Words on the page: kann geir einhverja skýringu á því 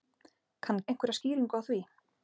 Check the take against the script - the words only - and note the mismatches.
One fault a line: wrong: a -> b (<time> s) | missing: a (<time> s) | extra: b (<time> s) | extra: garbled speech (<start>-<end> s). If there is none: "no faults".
missing: geir (0.8 s)